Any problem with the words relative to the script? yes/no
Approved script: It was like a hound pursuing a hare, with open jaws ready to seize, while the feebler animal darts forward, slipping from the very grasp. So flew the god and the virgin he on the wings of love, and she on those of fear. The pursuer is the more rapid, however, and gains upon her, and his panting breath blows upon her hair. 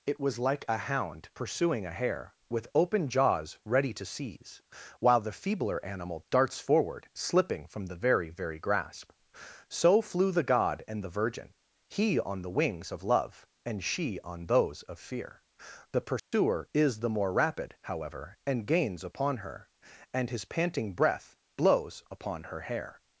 yes